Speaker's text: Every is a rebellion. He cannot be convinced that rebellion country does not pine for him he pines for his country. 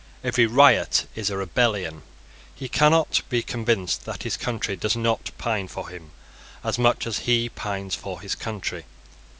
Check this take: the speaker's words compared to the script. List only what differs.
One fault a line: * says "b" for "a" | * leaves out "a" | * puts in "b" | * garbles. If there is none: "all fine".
* puts in "riot"
* says "his" for "rebellion"
* puts in "as much as"